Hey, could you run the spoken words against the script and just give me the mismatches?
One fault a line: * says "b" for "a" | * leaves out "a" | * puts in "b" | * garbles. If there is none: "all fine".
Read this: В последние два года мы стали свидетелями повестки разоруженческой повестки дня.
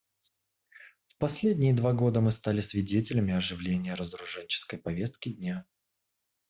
* says "оживления" for "повестки"